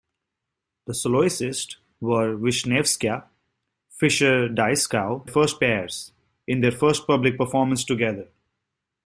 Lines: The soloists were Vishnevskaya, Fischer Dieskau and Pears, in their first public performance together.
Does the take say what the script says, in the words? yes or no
no